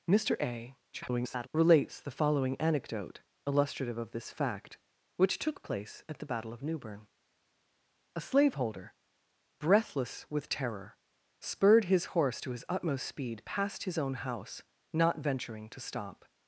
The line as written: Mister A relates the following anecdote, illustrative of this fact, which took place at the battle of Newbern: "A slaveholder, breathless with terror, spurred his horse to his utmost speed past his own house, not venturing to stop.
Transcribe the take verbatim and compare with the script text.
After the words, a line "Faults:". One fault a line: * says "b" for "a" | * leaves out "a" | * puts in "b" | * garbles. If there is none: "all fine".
Mister A [garbled] relates the following anecdote, illustrative of this fact, which took place at the battle of Newbern: "A slaveholder, breathless with terror, spurred his horse to his utmost speed past his own house, not venturing to stop.
Faults:
* garbles